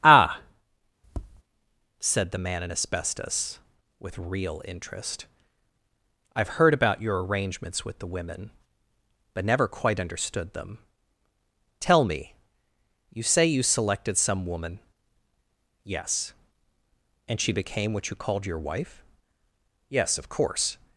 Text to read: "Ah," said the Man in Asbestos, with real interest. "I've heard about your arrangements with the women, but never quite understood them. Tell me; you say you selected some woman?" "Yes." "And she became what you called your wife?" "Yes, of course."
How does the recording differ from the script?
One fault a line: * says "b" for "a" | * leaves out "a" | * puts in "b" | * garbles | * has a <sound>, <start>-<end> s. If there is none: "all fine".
* has a tap, 1.0-1.4 s